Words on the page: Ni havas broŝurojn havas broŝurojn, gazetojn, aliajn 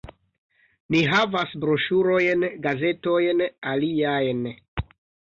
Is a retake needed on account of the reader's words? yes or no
yes